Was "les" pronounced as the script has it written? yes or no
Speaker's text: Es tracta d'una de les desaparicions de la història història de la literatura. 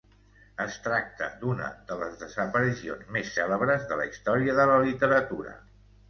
yes